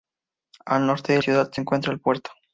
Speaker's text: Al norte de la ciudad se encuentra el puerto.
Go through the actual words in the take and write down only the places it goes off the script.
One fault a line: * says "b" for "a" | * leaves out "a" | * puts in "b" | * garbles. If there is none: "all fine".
* leaves out "la"